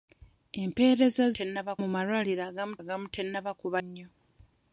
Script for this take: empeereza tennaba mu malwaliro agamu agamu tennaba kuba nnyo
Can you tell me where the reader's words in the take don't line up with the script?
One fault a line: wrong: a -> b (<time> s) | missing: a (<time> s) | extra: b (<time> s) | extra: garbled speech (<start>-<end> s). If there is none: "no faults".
no faults